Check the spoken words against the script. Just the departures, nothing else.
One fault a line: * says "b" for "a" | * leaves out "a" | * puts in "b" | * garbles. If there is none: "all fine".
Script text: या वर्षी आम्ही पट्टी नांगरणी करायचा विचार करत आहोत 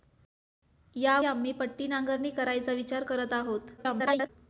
* leaves out "वर्षी"
* garbles